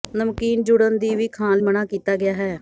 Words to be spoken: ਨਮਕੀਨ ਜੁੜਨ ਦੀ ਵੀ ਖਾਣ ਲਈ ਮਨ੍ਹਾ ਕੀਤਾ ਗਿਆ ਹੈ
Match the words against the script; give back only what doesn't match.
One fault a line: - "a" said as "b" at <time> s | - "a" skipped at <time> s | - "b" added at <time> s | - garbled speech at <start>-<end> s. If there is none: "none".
- "ਲਈ" skipped at 1.6 s